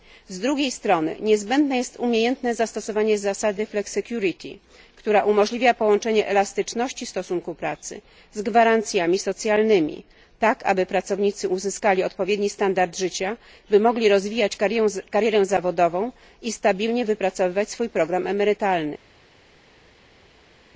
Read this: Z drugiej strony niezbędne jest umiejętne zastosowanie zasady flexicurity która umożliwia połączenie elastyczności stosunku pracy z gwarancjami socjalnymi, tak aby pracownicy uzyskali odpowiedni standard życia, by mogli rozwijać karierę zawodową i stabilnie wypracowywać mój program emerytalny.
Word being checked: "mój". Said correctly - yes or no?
no